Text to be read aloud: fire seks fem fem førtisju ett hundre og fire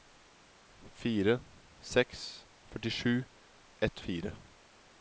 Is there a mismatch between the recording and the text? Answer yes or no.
yes